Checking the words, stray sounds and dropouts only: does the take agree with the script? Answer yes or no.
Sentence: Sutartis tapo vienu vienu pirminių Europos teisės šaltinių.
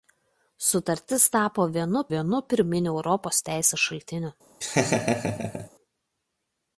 no